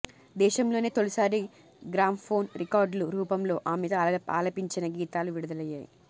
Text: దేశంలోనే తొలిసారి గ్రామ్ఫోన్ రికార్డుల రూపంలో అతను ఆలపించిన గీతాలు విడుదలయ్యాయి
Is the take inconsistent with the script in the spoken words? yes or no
yes